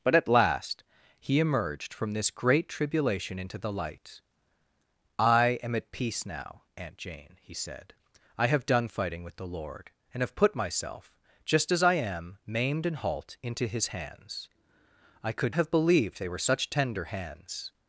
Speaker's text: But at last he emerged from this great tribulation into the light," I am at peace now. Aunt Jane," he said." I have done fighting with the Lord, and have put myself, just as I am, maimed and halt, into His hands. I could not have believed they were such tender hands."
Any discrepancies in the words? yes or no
yes